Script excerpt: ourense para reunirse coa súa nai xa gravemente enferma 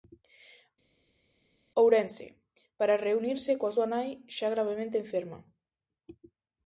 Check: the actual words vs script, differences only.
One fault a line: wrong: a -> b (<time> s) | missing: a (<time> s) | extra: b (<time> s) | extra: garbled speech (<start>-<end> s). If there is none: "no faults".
no faults